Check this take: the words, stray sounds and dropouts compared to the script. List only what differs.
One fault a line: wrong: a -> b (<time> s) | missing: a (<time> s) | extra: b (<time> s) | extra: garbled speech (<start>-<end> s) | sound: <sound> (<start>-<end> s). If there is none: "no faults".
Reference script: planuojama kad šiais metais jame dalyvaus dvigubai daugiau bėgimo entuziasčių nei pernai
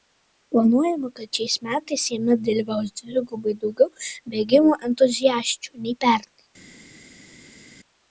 no faults